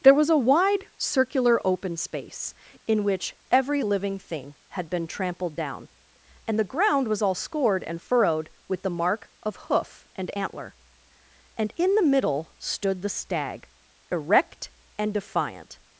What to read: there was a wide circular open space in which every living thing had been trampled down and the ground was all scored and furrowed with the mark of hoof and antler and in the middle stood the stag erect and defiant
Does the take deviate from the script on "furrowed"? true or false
false